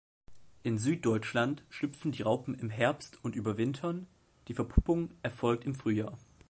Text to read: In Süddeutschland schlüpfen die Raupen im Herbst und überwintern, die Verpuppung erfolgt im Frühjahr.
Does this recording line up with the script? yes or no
yes